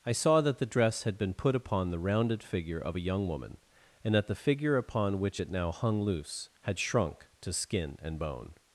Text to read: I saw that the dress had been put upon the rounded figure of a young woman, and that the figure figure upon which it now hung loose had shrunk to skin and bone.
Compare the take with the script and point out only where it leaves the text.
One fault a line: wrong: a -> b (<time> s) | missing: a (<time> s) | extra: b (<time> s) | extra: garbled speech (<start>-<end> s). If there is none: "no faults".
missing: figure (4.8 s)